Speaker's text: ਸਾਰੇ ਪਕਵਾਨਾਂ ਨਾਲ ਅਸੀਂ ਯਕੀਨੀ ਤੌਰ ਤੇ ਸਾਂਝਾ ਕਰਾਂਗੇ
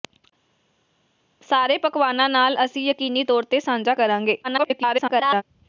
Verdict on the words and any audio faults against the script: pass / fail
fail